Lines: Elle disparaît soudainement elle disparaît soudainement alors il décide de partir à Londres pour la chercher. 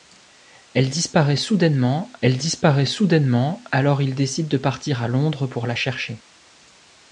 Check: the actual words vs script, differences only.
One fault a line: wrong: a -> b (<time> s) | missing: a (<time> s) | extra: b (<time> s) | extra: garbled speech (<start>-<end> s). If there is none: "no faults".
no faults